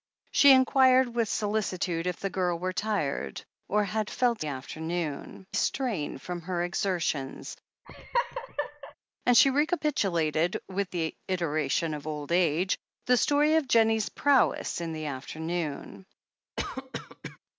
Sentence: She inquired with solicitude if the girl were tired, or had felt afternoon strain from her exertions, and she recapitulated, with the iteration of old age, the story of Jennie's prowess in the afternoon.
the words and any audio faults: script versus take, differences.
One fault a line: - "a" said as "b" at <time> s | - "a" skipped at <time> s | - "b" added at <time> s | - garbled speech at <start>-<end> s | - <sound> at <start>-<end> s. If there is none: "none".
- laugh at 7.8-8.9 s
- cough at 16.6-17.4 s